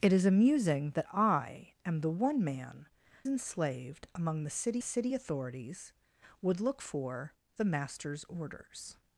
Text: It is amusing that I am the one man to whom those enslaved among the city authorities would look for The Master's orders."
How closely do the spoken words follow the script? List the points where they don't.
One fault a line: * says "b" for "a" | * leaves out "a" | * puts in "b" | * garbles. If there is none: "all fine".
* leaves out "to whom those"
* puts in "city"